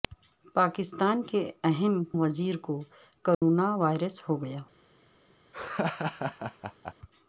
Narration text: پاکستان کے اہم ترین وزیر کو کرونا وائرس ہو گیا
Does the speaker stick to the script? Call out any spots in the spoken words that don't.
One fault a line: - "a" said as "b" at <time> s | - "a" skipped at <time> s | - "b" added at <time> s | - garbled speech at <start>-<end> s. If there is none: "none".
- "ترین" skipped at 2.0 s